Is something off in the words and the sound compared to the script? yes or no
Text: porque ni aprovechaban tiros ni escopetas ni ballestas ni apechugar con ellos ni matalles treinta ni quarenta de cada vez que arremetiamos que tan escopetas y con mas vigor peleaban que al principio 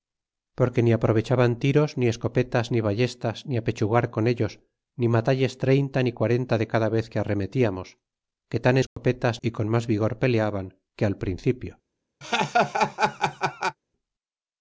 yes